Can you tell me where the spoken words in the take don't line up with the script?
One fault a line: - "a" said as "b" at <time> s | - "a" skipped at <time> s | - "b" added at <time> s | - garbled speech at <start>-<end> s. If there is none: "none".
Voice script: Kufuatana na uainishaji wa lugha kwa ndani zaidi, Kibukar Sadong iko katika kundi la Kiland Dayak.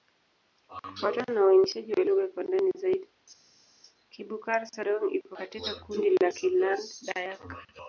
none